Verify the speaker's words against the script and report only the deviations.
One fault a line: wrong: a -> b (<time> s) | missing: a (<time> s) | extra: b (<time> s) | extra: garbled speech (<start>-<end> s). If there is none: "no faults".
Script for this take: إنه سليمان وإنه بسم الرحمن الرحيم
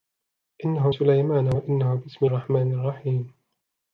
no faults